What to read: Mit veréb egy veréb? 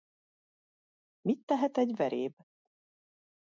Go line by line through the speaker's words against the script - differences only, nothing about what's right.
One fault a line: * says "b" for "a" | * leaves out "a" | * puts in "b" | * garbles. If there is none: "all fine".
* says "tehet" for "veréb"